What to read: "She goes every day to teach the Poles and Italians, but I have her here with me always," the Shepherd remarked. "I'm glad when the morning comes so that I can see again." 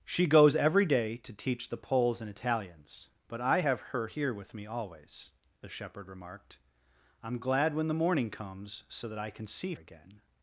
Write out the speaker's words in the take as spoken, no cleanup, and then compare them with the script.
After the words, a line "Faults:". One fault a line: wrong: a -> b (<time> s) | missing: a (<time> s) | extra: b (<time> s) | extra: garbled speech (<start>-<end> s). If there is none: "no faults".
"She goes every day to teach the Poles and Italians, but I have her here with me always," the Shepherd remarked. "I'm glad when the morning comes so that I can see again."
Faults:
no faults